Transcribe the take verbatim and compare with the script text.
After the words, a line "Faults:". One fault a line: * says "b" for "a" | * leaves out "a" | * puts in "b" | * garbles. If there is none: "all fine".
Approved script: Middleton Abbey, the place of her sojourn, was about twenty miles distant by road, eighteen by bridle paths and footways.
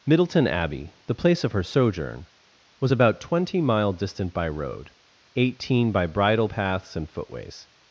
Middleton Abbey, the place of her sojourn, was about twenty mile distant by road, eighteen by bridle paths and footways.
Faults:
* says "mile" for "miles"